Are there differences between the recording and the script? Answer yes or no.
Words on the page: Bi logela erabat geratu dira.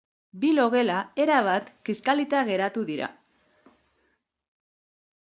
yes